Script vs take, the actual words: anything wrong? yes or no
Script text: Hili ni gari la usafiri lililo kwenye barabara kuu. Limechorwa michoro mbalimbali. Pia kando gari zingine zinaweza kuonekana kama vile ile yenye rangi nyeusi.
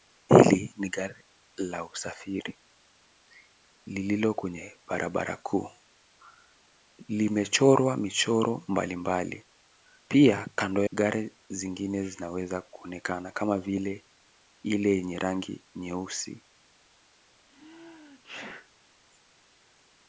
no